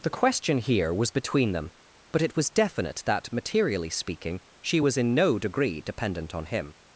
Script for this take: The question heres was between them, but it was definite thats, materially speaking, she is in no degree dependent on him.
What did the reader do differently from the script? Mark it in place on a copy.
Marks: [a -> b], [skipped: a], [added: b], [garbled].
The question [heres -> here] was between them, but it was definite [thats, -> that] materially speaking, she [is -> was] in no degree dependent on him.